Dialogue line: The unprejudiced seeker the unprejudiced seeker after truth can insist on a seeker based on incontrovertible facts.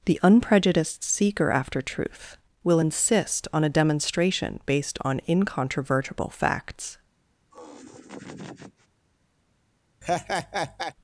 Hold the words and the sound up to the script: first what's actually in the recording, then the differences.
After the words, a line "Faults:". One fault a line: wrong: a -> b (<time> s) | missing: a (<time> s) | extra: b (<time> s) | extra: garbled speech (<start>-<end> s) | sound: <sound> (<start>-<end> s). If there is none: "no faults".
The unprejudiced seeker after truth will insist on a demonstration based on incontrovertible facts.
Faults:
missing: the unprejudiced seeker (1.5 s)
wrong: can -> will (2.6 s)
wrong: seeker -> demonstration (3.7 s)
sound: laugh (7.5-8.9 s)
sound: laugh (10.0-10.9 s)